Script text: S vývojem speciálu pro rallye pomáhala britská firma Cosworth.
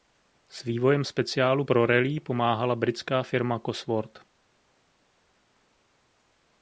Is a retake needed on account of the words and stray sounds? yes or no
no